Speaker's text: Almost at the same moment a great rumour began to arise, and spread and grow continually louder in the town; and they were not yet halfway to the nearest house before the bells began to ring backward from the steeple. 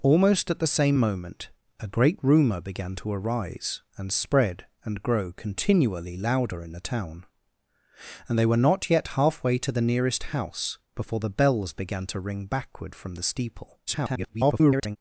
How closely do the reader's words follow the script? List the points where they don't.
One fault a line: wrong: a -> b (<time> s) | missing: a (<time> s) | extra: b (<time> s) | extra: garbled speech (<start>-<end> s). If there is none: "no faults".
extra: garbled speech (13.9-15.0 s)